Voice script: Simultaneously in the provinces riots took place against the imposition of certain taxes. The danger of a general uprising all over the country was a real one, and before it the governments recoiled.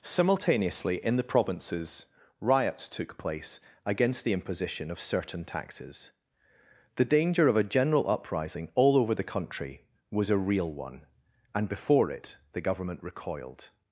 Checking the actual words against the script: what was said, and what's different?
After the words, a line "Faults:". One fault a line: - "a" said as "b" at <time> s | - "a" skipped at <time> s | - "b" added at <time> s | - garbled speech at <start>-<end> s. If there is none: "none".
Simultaneously in the provinces riots took place against the imposition of certain taxes. The danger of a general uprising all over the country was a real one, and before it the government recoiled.
Faults:
- "governments" said as "government" at 12.6 s